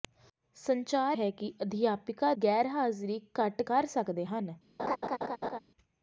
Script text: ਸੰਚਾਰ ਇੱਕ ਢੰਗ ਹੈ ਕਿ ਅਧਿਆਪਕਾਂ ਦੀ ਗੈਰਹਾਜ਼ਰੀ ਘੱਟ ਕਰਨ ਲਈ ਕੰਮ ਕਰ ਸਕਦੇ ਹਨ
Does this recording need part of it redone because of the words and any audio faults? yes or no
yes